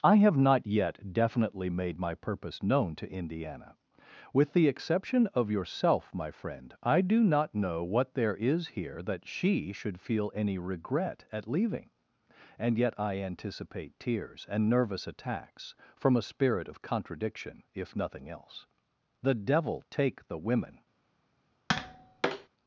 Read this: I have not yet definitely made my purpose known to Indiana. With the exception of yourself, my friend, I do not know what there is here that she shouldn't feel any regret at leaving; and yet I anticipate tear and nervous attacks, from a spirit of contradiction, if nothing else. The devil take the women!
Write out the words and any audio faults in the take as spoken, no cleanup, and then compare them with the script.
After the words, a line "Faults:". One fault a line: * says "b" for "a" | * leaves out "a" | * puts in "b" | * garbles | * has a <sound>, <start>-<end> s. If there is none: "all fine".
I have not yet definitely made my purpose known to Indiana. With the exception of yourself, my friend, I do not know what there is here that she should feel any regret at leaving; and yet I anticipate tears and nervous attacks, from a spirit of contradiction, if nothing else. The devil take the women!
Faults:
* says "should" for "shouldn't"
* says "tears" for "tear"
* has a tap, 21.7-22.5 s